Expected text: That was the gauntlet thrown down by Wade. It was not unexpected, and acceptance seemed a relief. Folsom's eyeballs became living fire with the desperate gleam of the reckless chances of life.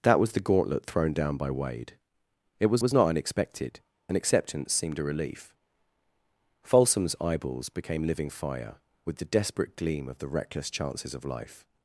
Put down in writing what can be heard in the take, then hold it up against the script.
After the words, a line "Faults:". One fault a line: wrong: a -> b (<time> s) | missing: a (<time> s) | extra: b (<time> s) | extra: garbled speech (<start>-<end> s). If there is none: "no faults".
That was the gauntlet thrown down by Wade. It was was not unexpected, and acceptance seemed a relief. Folsom's eyeballs became living fire with the desperate gleam of the reckless chances of life.
Faults:
extra: was (2.8 s)